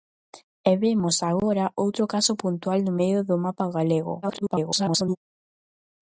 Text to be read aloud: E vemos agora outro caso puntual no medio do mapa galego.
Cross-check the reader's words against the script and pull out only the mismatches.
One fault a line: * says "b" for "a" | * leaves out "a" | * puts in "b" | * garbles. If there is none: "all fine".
* garbles